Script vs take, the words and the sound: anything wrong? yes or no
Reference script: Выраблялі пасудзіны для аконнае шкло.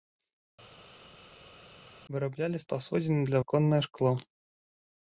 no